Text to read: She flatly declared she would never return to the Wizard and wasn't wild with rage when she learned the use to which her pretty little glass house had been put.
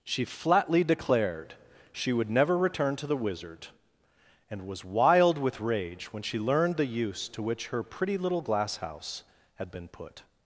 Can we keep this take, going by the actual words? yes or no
no